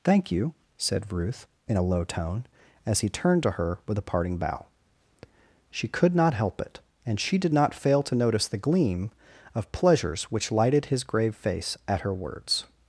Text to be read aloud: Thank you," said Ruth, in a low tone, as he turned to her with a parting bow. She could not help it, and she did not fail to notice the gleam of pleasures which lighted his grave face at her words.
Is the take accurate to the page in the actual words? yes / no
yes